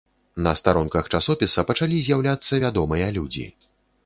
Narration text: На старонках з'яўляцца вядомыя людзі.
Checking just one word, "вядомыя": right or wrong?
right